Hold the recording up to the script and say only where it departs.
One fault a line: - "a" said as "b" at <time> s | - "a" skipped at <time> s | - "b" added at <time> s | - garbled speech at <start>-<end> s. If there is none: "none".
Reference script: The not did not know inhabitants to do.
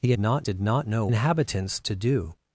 none